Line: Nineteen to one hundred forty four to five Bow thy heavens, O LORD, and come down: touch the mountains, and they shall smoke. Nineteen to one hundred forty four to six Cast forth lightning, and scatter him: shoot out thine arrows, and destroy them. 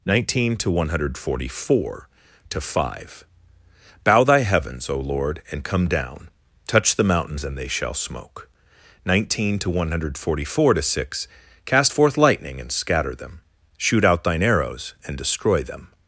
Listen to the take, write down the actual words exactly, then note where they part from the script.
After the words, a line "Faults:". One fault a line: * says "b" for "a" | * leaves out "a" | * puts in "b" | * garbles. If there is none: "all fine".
Nineteen to one hundred forty four to five Bow thy heavens, O LORD, and come down: touch the mountains, and they shall smoke. Nineteen to one hundred forty four to six Cast forth lightning, and scatter them: shoot out thine arrows, and destroy them.
Faults:
* says "them" for "him"